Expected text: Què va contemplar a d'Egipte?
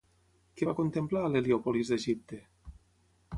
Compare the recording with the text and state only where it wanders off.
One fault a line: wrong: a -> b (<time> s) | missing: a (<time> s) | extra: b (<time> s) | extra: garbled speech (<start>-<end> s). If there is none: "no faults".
extra: l'Heliòpolis (1.3 s)